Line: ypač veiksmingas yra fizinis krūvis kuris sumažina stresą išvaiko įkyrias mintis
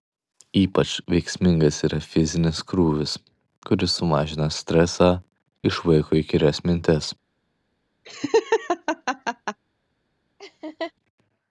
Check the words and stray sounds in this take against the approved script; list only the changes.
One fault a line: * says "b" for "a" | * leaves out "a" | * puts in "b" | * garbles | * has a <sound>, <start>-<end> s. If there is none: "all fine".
* has a laugh, 8.0-9.6 s
* has a laugh, 10.4-10.9 s